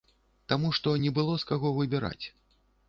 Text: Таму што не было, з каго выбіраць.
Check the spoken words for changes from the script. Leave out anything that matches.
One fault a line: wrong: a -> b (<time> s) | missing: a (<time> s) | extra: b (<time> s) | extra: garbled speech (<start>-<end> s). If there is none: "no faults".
no faults